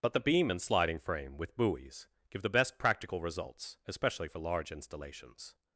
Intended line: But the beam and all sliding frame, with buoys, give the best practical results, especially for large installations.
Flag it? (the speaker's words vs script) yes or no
yes